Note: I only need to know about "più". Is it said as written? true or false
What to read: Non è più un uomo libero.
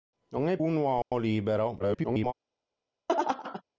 false